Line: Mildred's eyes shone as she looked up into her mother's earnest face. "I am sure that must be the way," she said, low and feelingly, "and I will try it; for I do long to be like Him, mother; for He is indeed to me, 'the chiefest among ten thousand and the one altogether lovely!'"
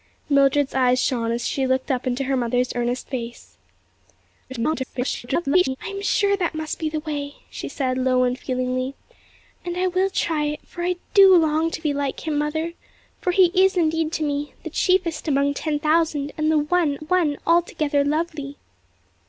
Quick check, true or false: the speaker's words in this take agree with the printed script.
false